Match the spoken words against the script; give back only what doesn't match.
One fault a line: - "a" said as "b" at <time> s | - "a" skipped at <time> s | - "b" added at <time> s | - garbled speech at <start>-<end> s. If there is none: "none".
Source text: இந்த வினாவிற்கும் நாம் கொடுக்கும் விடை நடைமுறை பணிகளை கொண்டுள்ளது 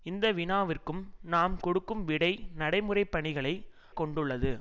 none